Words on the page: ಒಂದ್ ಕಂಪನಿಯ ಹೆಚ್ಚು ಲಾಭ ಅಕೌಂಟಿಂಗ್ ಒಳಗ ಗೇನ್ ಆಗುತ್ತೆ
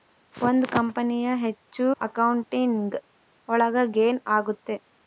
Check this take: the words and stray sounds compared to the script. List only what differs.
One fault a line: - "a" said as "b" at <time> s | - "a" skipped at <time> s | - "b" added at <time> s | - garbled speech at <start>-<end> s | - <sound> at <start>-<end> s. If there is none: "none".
- "ಲಾಭ" skipped at 1.9 s